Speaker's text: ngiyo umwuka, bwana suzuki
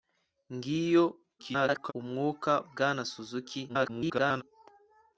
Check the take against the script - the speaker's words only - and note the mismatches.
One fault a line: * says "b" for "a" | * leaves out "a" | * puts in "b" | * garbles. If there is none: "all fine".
* garbles
* garbles